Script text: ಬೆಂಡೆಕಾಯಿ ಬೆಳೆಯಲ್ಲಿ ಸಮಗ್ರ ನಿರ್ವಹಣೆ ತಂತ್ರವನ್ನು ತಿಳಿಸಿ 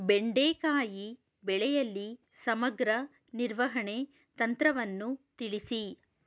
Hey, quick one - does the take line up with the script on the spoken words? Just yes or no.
yes